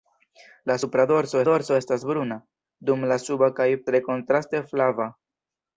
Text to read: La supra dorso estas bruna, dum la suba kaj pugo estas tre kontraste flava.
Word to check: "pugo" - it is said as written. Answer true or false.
false